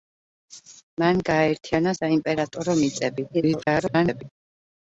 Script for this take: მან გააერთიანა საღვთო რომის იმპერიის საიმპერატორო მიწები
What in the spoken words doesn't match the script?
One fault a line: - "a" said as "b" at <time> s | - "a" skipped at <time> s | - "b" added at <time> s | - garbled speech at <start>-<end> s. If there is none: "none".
- "საღვთო რომის იმპერიის" skipped at 1.9 s
- garbled speech at 3.3-4.2 s